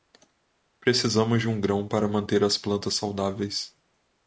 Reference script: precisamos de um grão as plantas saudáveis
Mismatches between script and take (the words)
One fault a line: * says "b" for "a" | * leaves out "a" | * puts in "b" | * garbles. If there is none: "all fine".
* puts in "para manter"